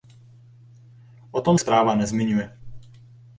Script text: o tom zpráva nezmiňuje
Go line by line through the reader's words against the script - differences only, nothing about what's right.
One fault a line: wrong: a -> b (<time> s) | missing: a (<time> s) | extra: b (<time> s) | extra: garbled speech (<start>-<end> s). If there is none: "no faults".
no faults